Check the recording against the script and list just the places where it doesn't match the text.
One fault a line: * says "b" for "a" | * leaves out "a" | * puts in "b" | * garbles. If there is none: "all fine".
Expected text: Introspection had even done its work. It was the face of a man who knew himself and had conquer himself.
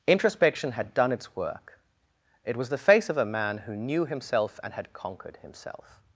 * leaves out "even"
* says "conquered" for "conquer"